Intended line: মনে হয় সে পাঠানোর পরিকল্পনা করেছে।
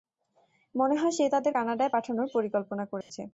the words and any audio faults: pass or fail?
fail